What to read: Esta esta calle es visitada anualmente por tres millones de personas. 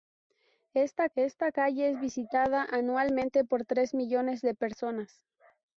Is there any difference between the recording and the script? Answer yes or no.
no